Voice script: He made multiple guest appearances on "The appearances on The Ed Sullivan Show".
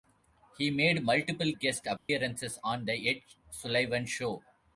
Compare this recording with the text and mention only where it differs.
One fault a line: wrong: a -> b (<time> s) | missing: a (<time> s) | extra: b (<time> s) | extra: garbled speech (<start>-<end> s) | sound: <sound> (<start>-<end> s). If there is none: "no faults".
sound: dropout (2.0-2.1 s)
missing: appearances on The (3.1 s)